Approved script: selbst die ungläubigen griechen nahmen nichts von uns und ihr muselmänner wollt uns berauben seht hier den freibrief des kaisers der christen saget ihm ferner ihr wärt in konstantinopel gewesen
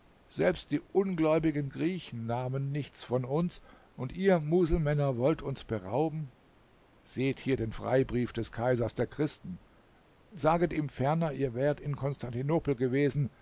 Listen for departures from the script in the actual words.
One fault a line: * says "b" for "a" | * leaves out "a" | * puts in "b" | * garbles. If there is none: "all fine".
all fine